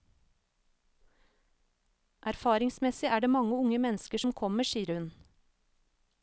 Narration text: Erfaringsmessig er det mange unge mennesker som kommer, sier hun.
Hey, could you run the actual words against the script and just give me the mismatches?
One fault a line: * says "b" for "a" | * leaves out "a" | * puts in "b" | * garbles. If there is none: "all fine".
all fine